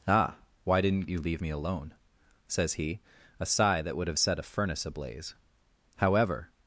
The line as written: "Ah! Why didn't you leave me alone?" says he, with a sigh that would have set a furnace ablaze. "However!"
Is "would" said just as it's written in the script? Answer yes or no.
yes